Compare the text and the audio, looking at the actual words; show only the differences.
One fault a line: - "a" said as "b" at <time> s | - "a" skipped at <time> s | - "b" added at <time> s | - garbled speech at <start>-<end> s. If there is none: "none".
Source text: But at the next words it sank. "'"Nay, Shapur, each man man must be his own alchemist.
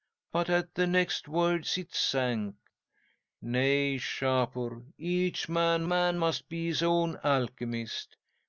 none